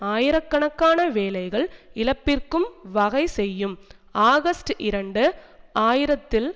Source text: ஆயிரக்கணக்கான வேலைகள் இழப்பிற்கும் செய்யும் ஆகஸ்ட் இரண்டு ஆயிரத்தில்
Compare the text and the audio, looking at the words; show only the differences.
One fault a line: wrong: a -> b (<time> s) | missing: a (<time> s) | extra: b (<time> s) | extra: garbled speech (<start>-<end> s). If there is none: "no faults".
extra: வகை (2.9 s)